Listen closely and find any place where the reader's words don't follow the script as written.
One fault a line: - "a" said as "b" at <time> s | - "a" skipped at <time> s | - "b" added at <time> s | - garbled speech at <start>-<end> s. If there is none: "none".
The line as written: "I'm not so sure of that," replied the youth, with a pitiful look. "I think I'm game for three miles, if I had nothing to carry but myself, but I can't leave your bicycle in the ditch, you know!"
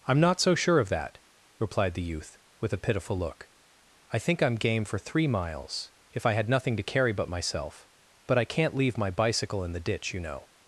- "your" said as "my" at 9.0 s